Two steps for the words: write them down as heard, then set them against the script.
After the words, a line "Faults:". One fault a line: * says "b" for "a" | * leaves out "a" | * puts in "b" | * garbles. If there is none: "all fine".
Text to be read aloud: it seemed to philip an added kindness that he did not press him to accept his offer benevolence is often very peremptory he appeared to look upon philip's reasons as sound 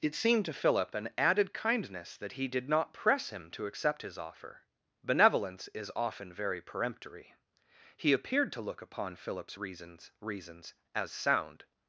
it seemed to philip an added kindness that he did not press him to accept his offer benevolence is often very peremptory he appeared to look upon philip's reasons reasons as sound
Faults:
* puts in "reasons"